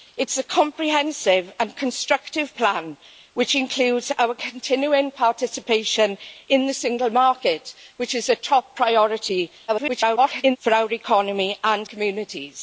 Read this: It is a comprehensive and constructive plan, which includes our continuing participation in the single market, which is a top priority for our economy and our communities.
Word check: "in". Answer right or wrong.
right